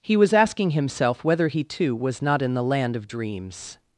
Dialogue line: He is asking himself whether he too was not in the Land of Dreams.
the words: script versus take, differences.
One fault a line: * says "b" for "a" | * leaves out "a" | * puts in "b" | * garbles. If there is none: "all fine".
* says "was" for "is"